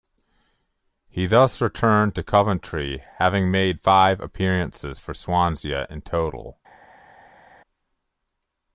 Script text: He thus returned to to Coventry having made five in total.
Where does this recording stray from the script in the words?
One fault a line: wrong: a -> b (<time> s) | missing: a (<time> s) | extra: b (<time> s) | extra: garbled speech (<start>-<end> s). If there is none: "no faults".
missing: to (2.2 s)
extra: appearances for Swansea (4.2 s)